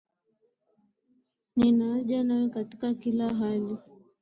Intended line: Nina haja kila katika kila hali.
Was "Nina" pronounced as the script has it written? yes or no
yes